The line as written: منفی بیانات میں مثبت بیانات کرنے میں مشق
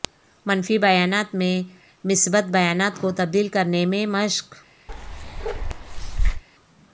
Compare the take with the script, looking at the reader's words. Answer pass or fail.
fail